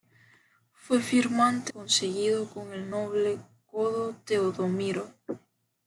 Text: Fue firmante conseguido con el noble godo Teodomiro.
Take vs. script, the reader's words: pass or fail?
pass